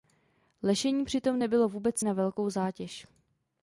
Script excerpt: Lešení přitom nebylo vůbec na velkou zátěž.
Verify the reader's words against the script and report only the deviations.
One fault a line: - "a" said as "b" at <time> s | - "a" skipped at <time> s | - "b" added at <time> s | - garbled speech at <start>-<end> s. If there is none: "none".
none